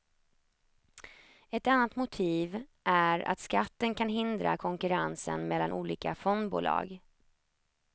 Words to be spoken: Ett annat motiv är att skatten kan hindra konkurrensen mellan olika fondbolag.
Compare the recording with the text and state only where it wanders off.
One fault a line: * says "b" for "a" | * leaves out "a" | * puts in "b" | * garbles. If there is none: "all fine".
all fine